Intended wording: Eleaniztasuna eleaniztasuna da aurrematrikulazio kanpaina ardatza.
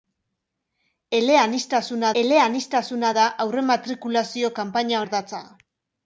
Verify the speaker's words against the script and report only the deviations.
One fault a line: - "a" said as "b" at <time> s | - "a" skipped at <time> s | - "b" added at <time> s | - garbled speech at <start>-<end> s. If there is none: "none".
none